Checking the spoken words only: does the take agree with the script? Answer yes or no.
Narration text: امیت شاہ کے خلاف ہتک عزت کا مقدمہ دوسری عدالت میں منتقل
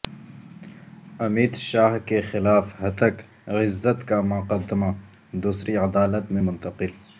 yes